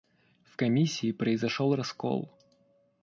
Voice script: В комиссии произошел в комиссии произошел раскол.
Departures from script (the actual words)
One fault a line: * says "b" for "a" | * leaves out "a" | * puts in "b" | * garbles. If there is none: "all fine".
* leaves out "в комиссии произошел"